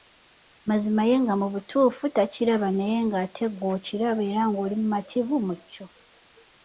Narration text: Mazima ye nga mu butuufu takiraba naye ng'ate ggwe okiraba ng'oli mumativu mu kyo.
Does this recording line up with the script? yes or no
no